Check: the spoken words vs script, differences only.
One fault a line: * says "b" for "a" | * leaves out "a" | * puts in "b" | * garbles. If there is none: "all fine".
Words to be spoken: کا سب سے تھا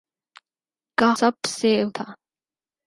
all fine